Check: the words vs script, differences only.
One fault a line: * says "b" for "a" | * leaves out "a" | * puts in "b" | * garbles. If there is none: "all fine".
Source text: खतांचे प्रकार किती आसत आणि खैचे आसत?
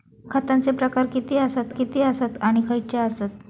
* puts in "किती आसत"